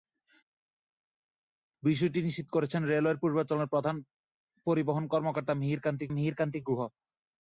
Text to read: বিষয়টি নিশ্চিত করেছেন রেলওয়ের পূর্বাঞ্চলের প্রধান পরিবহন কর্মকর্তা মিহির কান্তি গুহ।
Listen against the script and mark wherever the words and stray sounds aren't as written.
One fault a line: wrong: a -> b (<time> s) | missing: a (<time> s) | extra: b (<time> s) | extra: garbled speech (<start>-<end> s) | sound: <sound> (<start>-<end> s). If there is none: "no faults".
extra: মিহির কান্তি (6.1 s)